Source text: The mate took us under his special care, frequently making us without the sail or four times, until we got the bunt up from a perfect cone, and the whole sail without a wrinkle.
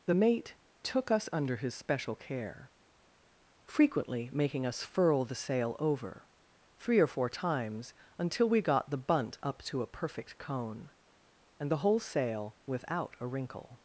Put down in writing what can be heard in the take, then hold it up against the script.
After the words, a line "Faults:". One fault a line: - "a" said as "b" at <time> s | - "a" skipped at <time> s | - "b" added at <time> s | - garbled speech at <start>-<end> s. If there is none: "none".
The mate took us under his special care, frequently making us furl the sail over, three or four times, until we got the bunt up to a perfect cone, and the whole sail without a wrinkle.
Faults:
- "without" said as "furl" at 4.8 s
- "over three" added at 5.8 s
- "from" said as "to" at 9.6 s